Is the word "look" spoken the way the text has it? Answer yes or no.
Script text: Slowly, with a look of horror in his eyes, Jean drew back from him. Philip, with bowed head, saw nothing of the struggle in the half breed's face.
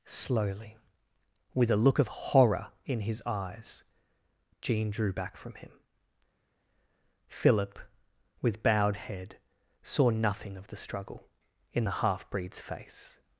yes